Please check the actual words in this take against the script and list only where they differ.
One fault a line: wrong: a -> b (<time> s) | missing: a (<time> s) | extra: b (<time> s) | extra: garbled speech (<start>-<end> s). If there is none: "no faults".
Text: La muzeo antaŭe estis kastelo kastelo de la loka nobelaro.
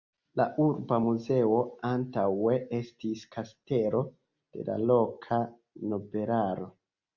extra: urba (0.7 s)
missing: kastelo (4.0 s)